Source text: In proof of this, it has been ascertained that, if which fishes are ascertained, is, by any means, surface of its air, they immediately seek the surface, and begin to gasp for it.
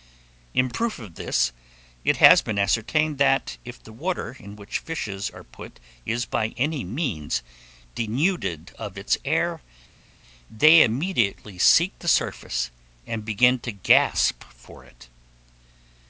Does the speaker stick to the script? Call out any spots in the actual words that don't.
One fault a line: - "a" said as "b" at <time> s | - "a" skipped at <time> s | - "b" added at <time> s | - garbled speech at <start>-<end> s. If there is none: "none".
- "the water in" added at 3.8 s
- "ascertained" said as "put" at 5.4 s
- "surface" said as "denuded" at 8.0 s